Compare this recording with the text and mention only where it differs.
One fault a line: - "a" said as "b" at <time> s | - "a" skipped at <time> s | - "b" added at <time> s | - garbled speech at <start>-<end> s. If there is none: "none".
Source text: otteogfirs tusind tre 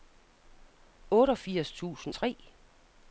none